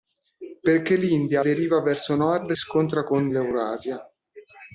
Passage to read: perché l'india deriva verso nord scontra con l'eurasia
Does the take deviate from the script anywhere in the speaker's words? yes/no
no